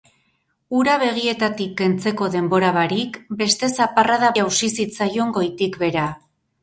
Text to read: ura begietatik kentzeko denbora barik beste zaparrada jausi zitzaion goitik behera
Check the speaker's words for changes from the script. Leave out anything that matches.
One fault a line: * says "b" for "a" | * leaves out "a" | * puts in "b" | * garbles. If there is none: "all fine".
all fine